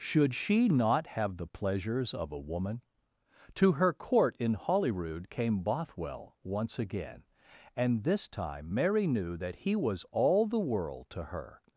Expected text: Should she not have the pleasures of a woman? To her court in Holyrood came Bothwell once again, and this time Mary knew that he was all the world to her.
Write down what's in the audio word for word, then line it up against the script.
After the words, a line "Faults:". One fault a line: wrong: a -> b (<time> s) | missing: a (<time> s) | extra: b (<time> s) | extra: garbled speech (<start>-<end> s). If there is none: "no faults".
Should she not have the pleasures of a woman? To her court in Holyrood came Bothwell once again, and this time Mary knew that he was all the world to her.
Faults:
no faults